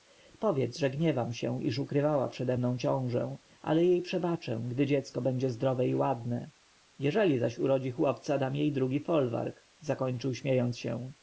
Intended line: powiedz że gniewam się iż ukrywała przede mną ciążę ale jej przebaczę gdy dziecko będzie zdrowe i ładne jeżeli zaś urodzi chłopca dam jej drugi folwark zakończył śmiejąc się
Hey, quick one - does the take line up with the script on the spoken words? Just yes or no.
yes